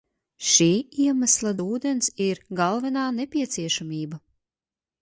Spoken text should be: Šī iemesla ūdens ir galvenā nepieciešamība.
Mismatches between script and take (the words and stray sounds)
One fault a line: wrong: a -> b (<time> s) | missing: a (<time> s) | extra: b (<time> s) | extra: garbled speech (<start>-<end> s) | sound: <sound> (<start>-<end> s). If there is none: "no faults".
no faults